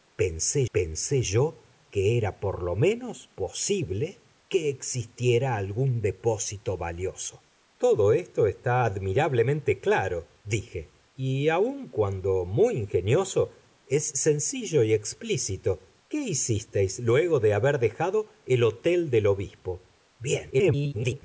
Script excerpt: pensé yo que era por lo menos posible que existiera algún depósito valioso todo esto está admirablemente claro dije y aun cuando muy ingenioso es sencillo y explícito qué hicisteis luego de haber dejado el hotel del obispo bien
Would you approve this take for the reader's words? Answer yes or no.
no